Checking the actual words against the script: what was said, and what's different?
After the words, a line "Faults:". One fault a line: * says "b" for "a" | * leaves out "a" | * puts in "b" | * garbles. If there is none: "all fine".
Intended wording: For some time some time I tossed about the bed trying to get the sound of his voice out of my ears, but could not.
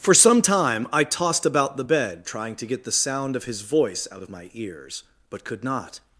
For some time I tossed about the bed trying to get the sound of his voice out of my ears, but could not.
Faults:
* leaves out "some time"